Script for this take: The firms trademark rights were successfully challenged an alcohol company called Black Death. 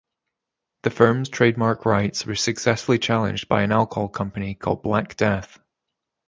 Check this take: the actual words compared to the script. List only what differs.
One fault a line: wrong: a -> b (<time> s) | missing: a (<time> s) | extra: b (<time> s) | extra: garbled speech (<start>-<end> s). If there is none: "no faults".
extra: by (3.5 s)